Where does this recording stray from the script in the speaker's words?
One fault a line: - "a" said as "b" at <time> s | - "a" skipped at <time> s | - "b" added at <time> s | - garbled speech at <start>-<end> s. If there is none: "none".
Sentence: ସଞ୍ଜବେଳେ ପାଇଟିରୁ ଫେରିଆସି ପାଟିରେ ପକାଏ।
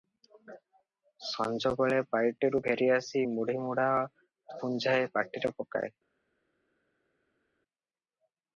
- "ମୁଢ଼ିମୁଢ଼ା ପୁଞ୍ଜାଏ" added at 3.3 s